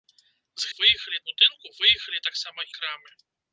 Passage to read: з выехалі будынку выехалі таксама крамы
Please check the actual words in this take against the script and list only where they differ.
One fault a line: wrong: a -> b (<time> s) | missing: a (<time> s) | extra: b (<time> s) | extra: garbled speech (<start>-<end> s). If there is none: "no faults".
no faults